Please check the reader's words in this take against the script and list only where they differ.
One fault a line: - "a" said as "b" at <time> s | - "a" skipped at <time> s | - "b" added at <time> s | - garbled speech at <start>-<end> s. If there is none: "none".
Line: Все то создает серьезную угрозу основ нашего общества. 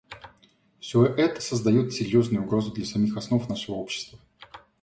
- "то" said as "это" at 1.1 s
- "для самих" added at 2.7 s